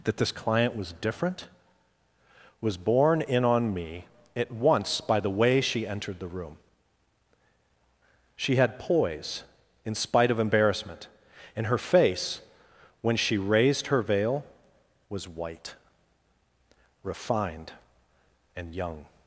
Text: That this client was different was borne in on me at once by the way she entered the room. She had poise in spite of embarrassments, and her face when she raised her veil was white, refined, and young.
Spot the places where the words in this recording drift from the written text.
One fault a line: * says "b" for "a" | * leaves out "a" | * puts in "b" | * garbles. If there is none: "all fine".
* says "embarrassment" for "embarrassments"